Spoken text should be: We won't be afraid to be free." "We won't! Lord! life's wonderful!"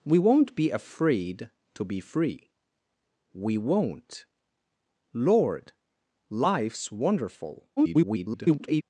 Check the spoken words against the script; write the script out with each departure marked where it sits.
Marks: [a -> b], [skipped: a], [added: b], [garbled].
We won't be afraid to be free." "We won't! Lord! life's wonderful!" [garbled]